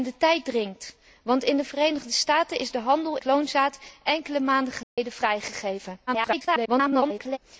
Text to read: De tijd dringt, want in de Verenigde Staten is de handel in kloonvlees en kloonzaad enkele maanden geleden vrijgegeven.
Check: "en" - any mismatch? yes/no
yes